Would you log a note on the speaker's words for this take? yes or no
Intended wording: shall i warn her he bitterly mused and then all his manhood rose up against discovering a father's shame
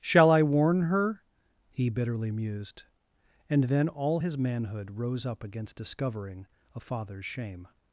no